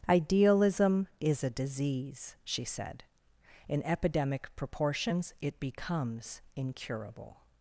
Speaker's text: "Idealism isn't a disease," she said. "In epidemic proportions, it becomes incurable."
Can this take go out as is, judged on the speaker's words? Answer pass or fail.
fail